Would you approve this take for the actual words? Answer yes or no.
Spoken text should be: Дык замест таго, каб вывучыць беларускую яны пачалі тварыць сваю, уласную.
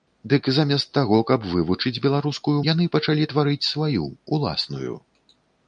yes